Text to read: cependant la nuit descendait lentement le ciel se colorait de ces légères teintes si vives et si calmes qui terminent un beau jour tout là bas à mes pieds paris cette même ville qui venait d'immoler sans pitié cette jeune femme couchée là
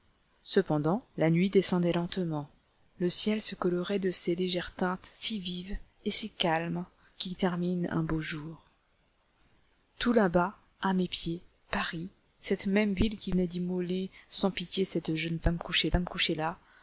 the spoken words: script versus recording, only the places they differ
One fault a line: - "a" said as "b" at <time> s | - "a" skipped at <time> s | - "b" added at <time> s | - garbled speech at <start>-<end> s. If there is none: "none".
- "femme couchée" added at 15.9 s